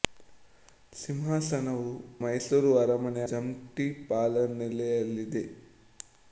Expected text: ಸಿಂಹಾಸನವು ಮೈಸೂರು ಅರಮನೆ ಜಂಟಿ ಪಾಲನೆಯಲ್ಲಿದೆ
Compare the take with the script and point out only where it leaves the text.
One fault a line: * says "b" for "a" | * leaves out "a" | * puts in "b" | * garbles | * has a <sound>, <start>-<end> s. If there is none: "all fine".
all fine